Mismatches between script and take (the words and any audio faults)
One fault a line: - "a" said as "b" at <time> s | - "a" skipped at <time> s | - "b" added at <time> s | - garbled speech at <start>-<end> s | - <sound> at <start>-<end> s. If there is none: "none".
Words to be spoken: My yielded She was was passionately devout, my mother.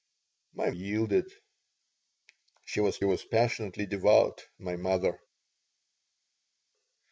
none